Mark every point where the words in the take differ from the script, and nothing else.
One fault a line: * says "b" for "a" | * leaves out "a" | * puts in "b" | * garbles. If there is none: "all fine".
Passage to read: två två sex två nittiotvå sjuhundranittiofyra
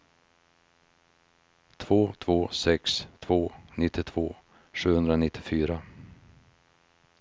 all fine